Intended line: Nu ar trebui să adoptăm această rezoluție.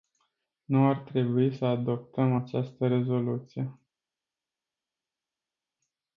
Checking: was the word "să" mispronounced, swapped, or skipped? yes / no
no